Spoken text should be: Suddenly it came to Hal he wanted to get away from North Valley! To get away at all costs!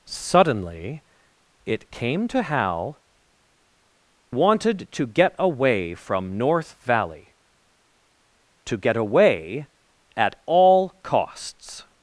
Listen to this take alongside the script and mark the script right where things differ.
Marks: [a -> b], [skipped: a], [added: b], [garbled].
Suddenly it came to Hal [skipped: he] wanted to get away from North Valley! To get away at all costs!